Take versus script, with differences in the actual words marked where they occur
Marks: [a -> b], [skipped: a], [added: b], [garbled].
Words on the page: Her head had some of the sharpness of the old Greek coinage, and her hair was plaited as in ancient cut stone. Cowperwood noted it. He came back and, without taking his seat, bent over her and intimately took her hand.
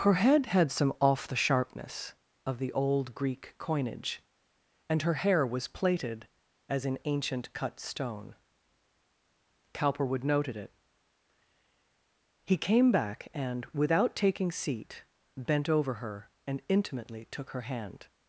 Her head had some [of -> off] the sharpness of the old Greek coinage, and her hair was plaited as in ancient cut stone. Cowperwood noted it. He came back and, without taking [skipped: his] seat, bent over her and intimately took her hand.